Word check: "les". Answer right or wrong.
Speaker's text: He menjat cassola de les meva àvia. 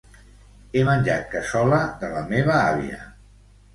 wrong